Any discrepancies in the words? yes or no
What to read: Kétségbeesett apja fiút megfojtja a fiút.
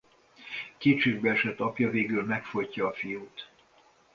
yes